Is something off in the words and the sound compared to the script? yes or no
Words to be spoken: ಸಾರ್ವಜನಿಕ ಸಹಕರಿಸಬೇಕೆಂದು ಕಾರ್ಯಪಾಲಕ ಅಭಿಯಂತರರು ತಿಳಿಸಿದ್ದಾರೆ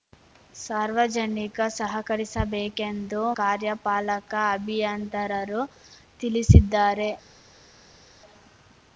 no